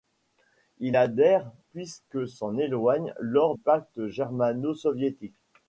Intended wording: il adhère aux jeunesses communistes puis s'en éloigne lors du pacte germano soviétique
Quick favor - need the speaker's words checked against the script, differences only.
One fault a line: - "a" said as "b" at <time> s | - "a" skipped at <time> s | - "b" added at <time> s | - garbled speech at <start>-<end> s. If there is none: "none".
- "aux jeunesses communistes" skipped at 1.5 s
- "du" skipped at 3.6 s